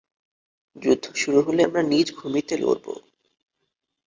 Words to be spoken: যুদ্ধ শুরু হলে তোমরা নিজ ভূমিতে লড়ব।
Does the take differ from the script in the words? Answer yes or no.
yes